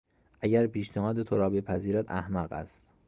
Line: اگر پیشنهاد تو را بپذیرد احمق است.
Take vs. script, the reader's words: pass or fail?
pass